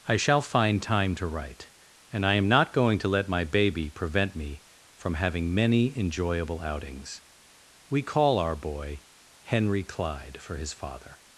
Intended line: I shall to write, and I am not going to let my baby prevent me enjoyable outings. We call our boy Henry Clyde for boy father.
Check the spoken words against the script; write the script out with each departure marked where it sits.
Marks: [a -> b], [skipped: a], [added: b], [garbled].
I shall [added: find time] to write, and I am not going to let my baby prevent me [added: from having many] enjoyable outings. We call our boy Henry Clyde for [boy -> his] father.